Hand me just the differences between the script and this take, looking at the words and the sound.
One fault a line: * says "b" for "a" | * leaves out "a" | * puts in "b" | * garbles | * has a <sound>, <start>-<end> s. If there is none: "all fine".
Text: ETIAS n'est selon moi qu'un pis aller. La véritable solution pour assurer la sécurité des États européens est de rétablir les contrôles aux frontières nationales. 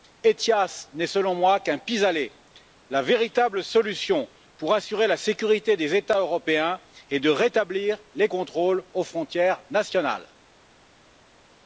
all fine